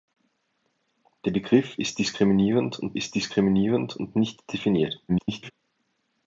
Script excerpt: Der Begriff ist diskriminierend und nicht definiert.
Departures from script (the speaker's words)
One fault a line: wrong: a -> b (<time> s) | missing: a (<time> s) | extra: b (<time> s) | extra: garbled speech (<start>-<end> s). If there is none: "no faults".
extra: ist diskriminierend und (2.9 s)
extra: garbled speech (5.1-5.5 s)